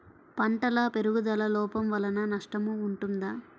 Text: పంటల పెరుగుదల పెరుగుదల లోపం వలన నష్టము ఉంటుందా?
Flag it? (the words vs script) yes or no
yes